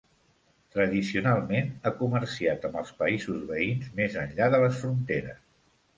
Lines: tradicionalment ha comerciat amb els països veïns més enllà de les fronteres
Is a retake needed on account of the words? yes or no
no